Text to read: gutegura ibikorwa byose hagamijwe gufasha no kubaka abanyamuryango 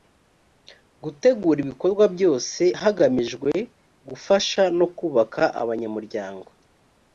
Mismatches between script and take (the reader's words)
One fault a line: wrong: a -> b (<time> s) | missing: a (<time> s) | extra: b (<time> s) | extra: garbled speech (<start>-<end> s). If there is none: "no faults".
no faults